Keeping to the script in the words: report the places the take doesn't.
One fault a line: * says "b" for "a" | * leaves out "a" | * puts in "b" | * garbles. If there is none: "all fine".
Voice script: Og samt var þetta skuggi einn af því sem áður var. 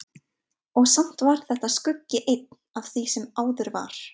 all fine